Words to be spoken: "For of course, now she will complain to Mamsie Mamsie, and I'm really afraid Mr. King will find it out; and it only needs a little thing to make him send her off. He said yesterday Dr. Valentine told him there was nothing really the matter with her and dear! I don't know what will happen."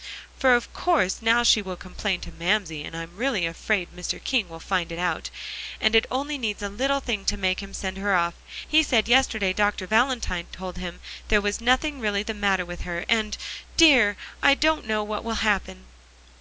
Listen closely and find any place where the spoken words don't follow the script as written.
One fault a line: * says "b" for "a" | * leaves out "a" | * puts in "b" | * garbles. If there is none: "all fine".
* leaves out "Mamsie"